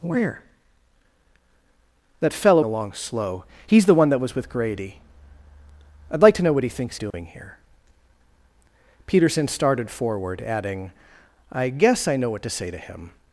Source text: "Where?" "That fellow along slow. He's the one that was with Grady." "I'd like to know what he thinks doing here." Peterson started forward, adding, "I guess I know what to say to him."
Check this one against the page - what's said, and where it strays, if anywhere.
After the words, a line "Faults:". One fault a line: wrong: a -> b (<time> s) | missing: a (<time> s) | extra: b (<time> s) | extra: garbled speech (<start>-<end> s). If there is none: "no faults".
"Where?" "That fellow along slow. He's the one that was with Grady." "I'd like to know what he thinks doing here." Peterson started forward, adding, "I guess I know what to say to him."
Faults:
no faults